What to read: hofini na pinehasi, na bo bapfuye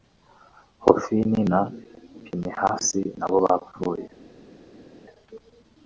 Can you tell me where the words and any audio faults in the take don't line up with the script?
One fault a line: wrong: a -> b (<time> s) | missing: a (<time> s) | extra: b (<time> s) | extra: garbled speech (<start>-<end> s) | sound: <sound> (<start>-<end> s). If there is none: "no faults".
no faults